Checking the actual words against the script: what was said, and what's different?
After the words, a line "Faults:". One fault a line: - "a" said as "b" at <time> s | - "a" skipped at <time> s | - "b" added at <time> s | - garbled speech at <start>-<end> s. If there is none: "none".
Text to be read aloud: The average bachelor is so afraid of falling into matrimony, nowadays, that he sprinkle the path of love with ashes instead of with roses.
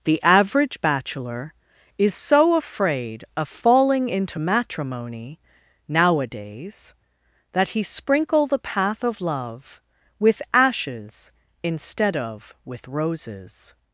The average bachelor is so afraid of falling into matrimony, nowadays, that he sprinkle the path of love with ashes instead of with roses.
Faults:
none